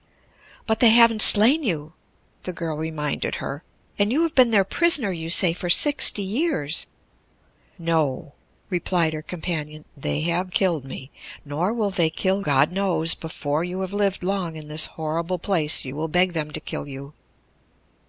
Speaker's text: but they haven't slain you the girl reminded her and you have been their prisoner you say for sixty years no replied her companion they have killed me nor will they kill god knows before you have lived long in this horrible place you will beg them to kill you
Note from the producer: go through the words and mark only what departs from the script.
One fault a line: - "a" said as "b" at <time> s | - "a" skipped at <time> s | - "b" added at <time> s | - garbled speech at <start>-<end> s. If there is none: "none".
none